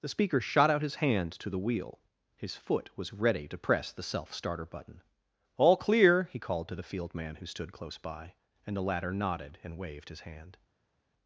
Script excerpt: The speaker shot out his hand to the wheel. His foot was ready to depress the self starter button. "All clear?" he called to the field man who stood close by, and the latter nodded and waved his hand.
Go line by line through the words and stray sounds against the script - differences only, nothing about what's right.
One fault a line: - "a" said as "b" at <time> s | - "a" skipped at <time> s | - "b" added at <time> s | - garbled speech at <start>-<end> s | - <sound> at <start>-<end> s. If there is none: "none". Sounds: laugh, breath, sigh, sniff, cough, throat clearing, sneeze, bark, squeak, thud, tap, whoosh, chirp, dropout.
- "to" skipped at 3.5 s